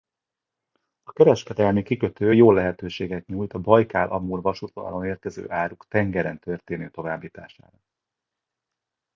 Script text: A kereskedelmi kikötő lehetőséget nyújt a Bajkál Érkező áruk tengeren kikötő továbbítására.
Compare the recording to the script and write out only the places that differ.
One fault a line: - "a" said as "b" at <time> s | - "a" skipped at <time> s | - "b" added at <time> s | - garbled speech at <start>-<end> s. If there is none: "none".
- "jó" added at 2.3 s
- "Amur vasútvonalon" added at 4.1 s
- "kikötő" said as "történő" at 6.4 s